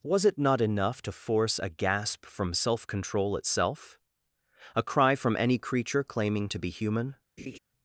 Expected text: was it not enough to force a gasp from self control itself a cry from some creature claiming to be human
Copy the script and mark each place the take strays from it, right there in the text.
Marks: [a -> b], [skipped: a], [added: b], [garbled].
was it not enough to force a gasp from self control itself a cry from [some -> any] creature claiming to be human